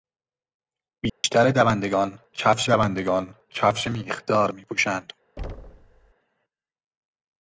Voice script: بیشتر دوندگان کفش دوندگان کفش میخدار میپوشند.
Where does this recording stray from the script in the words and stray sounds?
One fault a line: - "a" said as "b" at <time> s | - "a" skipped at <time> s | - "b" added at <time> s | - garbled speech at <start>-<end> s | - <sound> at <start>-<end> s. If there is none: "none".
- dropout at 1.1-1.2 s
- thud at 5.4-6.1 s